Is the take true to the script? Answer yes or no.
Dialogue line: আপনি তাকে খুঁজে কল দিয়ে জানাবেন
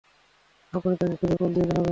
yes